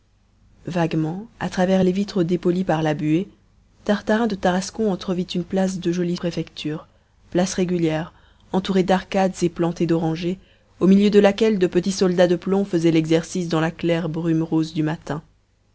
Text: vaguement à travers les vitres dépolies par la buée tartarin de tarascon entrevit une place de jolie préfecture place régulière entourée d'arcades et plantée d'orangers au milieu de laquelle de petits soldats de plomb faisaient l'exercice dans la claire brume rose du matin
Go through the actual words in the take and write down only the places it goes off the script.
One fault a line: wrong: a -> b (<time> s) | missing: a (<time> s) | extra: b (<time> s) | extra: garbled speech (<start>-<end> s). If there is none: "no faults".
no faults